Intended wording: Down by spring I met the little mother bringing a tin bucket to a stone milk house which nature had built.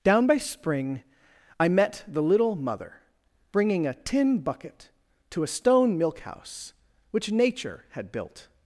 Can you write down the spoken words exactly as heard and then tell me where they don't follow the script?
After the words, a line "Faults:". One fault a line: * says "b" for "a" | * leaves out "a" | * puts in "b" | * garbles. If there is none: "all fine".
Down by spring I met the little mother bringing a tin bucket to a stone milk house which nature had built.
Faults:
all fine